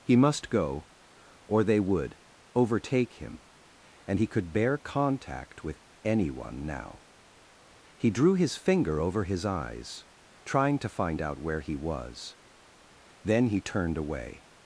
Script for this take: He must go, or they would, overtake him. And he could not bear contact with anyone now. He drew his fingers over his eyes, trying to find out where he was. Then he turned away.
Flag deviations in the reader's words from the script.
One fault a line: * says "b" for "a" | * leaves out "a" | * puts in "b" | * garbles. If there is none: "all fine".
* leaves out "not"
* says "finger" for "fingers"